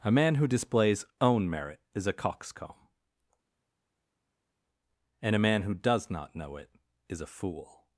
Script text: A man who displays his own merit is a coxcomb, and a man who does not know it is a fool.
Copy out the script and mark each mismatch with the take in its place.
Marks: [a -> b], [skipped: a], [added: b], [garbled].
A man who displays [skipped: his] own merit is a coxcomb, and a man who does not know it is a fool.